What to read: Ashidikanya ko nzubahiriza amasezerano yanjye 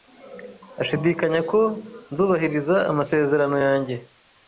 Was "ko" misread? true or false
false